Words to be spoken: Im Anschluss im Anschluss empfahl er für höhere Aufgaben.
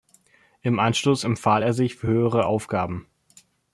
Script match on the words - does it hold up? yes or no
no